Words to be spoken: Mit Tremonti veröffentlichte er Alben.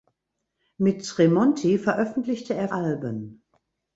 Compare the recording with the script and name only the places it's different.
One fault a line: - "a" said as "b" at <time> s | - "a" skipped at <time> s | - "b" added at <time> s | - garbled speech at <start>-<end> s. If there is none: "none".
none